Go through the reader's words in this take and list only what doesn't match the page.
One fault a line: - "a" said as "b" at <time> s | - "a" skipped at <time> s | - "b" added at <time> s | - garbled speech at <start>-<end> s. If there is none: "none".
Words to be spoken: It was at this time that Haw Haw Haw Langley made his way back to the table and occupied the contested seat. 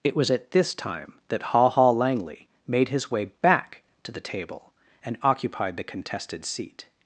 - "Haw" skipped at 1.9 s